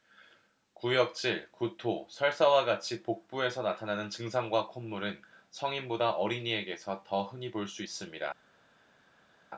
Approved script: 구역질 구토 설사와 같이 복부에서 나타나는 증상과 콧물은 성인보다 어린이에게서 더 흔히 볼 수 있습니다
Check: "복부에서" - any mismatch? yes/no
no